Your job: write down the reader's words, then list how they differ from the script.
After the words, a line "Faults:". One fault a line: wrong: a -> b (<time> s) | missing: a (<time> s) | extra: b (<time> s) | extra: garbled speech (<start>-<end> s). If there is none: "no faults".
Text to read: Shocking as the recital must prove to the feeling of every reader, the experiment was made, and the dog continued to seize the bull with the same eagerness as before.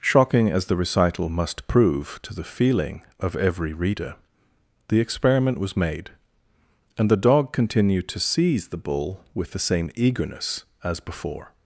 Shocking as the recital must prove to the feeling of every reader, the experiment was made, and the dog continued to seize the bull with the same eagerness as before.
Faults:
no faults